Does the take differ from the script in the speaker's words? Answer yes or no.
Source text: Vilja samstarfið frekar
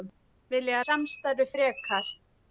no